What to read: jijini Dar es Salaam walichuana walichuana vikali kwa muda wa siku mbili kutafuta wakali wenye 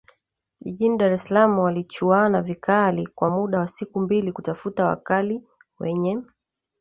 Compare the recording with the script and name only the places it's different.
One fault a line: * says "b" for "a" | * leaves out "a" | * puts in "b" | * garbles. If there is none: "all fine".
* leaves out "walichuana"